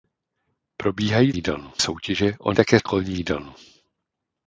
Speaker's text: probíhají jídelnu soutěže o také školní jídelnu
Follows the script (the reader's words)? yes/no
yes